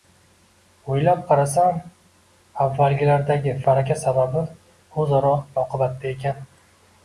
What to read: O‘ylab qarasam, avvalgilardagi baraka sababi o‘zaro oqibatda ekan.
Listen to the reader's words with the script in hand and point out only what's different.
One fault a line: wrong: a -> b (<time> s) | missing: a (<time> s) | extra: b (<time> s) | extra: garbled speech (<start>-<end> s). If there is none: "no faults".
no faults